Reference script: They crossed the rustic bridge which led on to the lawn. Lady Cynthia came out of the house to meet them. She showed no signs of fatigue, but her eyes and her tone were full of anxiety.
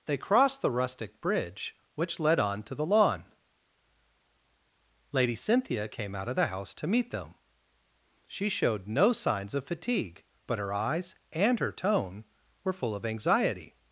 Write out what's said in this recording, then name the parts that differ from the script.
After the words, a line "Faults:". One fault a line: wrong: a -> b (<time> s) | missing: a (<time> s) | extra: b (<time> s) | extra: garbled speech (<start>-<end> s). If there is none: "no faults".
They crossed the rustic bridge which led on to the lawn. Lady Cynthia came out of the house to meet them. She showed no signs of fatigue, but her eyes and her tone were full of anxiety.
Faults:
no faults